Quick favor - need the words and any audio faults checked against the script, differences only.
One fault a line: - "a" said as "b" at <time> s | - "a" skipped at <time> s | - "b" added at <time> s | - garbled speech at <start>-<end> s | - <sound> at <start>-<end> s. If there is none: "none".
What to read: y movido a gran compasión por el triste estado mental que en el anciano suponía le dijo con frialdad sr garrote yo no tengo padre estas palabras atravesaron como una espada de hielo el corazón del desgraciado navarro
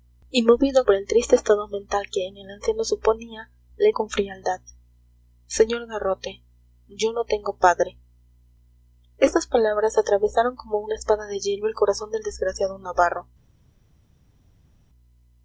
- "gran compasión" skipped at 0.8 s
- "dijo" skipped at 3.9 s